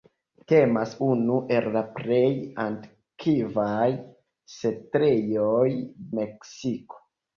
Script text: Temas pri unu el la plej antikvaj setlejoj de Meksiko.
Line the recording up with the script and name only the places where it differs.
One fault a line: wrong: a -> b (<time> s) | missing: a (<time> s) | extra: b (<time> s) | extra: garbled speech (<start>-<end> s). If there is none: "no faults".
missing: pri (0.9 s)
missing: de (5.7 s)